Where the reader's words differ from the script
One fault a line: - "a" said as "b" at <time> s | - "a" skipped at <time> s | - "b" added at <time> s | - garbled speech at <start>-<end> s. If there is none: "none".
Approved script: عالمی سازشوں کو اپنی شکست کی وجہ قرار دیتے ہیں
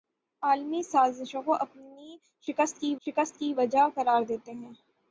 - "شکست کی" added at 3.1 s